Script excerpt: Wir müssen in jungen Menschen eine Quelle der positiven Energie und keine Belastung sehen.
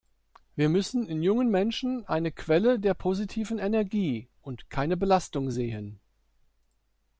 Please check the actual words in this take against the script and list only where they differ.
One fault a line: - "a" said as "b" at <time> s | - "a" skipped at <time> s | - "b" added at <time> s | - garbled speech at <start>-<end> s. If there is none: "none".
none